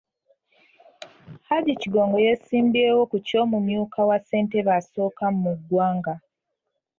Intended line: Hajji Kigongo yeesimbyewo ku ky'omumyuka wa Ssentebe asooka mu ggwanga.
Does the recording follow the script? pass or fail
pass